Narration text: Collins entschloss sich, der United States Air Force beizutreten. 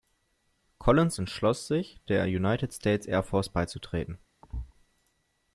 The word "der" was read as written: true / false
true